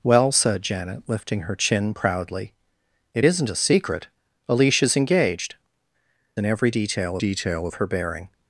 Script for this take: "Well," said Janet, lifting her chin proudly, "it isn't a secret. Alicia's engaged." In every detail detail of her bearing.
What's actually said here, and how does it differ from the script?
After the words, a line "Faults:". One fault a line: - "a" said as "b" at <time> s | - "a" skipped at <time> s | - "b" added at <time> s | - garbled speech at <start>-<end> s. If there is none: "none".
"Well," said Janet, lifting her chin proudly, "it isn't a secret. Alicia's engaged." In every detail detail of her bearing.
Faults:
none